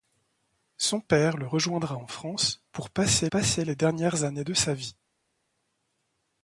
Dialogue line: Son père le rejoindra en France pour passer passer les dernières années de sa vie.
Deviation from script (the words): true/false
false